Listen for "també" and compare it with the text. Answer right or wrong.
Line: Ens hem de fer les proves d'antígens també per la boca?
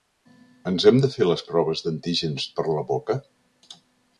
wrong